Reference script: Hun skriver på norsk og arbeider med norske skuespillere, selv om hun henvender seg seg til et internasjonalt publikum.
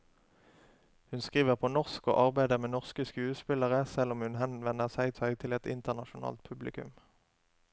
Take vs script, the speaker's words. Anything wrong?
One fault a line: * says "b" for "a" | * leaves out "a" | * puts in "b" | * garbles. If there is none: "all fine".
all fine